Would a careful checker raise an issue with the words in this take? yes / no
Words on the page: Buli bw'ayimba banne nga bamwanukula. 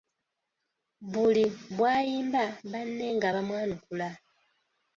no